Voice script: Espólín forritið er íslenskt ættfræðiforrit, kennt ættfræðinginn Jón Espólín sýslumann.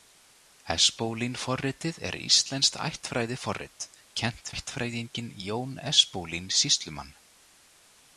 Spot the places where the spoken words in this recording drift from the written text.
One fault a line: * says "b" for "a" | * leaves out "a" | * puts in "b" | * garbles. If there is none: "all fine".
all fine